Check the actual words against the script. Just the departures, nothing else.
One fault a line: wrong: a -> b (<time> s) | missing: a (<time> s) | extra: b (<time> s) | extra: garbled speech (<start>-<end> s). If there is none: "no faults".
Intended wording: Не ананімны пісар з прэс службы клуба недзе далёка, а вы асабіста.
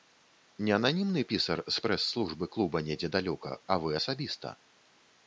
no faults